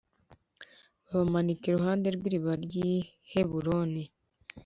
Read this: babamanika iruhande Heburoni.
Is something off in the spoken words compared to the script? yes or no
yes